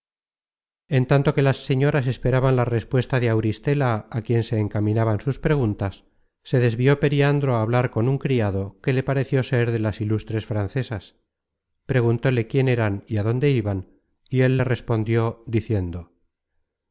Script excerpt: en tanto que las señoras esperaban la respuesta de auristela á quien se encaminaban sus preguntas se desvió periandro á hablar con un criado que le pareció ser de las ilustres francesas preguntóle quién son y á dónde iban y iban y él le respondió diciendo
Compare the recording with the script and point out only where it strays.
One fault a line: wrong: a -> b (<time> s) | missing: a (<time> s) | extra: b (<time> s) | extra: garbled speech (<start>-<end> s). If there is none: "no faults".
wrong: son -> eran (12.8 s)
missing: iban y (14.4 s)